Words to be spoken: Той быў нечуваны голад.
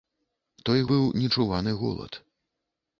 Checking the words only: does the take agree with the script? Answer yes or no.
yes